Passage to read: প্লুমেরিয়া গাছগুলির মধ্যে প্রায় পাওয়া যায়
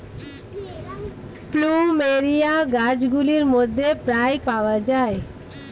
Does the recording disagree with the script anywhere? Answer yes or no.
no